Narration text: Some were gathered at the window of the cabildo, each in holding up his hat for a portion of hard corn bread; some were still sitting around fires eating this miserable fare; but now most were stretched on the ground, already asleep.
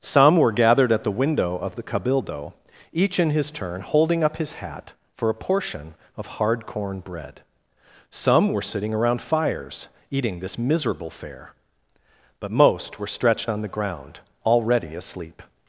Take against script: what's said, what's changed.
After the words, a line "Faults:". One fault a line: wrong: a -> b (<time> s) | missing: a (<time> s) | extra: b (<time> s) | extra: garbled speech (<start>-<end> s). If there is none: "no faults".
Some were gathered at the window of the cabildo, each in his turn holding up his hat for a portion of hard corn bread; some were sitting around fires eating this miserable fare; but most were stretched on the ground, already asleep.
Faults:
extra: his turn (3.3 s)
missing: still (8.6 s)
missing: now (12.5 s)